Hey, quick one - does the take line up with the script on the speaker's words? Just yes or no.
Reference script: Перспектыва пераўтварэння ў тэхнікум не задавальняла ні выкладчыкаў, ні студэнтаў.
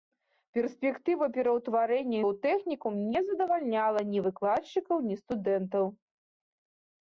yes